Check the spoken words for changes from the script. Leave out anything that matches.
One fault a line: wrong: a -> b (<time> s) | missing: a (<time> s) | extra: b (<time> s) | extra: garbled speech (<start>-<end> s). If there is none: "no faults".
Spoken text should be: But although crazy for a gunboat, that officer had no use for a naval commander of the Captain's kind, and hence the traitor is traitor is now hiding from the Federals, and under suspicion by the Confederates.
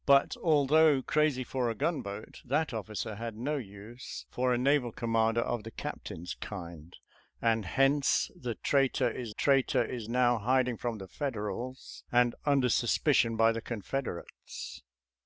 no faults